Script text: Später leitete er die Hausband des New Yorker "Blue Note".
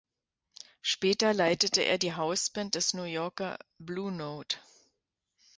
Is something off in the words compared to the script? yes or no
no